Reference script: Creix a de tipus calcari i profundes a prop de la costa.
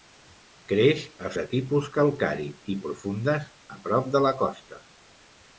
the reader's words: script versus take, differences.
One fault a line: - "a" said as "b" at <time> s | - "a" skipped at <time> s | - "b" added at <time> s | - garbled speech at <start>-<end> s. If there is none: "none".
none